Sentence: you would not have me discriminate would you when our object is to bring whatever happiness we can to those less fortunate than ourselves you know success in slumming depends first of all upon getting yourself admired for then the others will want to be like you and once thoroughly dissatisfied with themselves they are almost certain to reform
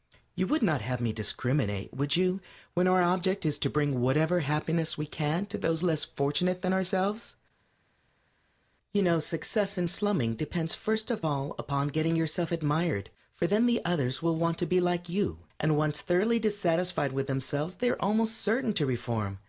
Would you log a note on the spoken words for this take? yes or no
no